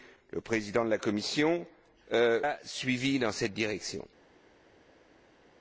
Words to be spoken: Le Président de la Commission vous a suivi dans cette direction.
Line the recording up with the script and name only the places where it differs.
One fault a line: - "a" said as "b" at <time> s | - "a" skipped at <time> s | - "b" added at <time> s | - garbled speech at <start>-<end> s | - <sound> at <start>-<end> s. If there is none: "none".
- "vous" skipped at 1.6 s